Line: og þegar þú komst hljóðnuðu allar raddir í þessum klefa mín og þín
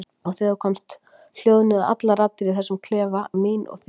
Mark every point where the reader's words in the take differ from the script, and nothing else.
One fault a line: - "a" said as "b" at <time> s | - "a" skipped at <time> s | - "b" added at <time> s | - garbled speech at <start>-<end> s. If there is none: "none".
none